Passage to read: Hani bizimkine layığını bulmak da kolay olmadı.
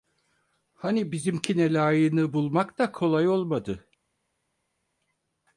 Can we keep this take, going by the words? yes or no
yes